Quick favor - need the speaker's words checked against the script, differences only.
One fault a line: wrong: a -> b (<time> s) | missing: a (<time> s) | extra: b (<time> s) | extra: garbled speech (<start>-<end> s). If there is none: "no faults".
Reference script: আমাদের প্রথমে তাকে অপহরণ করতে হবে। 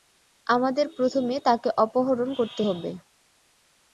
no faults